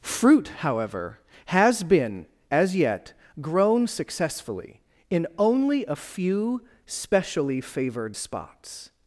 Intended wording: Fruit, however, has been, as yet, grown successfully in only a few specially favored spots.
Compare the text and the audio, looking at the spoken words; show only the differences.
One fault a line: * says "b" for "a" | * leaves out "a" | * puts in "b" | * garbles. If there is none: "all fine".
all fine